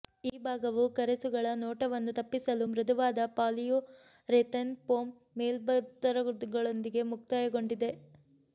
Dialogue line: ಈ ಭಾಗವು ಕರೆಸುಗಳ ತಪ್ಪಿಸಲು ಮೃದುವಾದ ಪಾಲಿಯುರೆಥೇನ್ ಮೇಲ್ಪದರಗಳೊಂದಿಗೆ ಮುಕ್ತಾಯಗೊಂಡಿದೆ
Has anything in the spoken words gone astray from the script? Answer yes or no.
yes